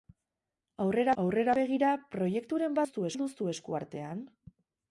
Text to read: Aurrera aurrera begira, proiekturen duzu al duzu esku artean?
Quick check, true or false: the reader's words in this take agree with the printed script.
true